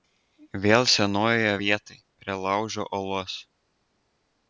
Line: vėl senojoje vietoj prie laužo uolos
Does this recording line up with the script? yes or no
yes